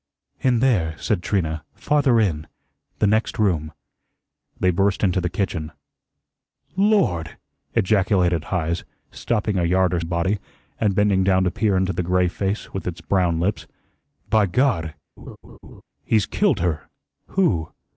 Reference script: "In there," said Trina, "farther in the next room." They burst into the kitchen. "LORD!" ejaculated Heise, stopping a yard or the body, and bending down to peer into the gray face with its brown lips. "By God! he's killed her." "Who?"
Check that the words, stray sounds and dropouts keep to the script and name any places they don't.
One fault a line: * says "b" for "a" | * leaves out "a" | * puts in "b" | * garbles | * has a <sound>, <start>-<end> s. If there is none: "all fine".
* has a laugh, 15.2-15.8 s